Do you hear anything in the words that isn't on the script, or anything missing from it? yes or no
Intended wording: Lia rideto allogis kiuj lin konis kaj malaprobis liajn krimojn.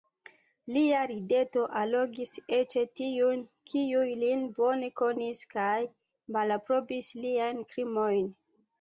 yes